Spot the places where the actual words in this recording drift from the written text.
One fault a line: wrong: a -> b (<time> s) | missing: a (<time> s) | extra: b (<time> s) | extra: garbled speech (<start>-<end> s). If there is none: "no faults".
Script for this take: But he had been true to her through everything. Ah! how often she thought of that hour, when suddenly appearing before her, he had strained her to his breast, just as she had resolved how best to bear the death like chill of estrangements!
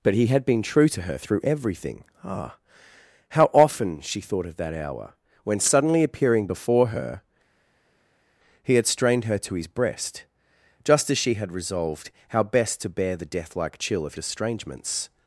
no faults